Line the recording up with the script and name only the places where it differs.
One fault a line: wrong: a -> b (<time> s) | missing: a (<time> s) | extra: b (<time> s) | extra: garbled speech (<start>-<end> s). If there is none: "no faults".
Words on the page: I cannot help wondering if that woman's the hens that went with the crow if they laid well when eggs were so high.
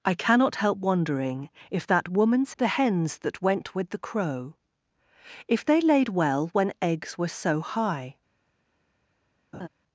no faults